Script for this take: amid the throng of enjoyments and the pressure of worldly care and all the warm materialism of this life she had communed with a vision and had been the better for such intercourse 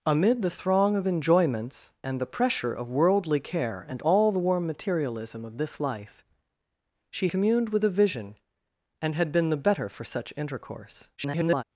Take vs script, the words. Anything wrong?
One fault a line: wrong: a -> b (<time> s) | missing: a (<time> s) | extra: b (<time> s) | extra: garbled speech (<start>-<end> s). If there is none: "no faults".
missing: had (7.3 s)
extra: garbled speech (11.2-11.6 s)